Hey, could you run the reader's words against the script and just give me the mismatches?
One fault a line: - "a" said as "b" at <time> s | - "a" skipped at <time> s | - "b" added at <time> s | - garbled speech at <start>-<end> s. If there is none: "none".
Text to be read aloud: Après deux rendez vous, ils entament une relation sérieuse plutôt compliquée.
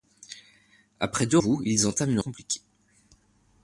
- "rendez" skipped at 1.4 s
- "relation sérieuse plutôt" skipped at 2.2 s